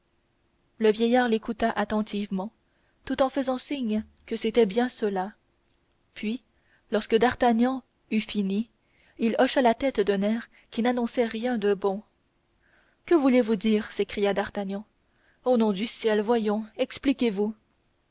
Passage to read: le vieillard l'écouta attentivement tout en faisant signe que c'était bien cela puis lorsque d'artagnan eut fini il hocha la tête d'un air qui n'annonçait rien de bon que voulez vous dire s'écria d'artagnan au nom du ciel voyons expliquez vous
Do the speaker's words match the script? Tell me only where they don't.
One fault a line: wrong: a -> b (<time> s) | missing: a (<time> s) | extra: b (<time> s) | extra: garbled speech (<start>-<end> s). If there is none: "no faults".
no faults